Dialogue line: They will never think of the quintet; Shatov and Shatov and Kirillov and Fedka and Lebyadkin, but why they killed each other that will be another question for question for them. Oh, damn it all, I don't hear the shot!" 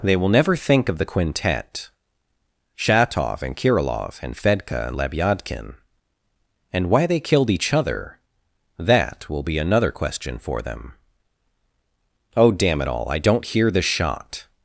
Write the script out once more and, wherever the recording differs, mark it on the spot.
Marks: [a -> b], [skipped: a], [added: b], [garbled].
They will never think of the quintet; Shatov and [skipped: Shatov and] Kirillov and Fedka and Lebyadkin, [but -> and] why they killed each other that will be another question for [skipped: question for] them. Oh, damn it all, I don't hear the shot!"